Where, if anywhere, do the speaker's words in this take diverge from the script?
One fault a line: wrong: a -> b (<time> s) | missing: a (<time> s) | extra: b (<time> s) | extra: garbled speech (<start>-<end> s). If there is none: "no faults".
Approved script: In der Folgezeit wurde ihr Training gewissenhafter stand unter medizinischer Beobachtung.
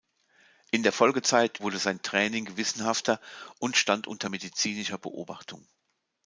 wrong: ihr -> sein (1.8 s)
extra: und (3.6 s)